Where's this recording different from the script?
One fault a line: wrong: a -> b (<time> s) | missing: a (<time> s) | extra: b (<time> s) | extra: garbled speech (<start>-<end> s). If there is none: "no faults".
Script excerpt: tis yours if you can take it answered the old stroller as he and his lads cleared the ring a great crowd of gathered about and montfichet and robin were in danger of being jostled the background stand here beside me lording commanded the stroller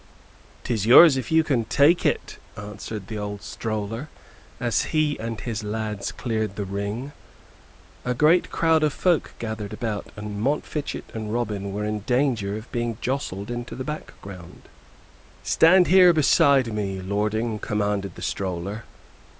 extra: folk (8.9 s)
extra: into (13.5 s)